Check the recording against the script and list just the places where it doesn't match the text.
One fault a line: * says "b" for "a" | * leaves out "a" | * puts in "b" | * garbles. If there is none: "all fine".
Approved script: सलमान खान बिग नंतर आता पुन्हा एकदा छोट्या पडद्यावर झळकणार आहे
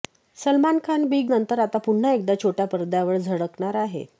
all fine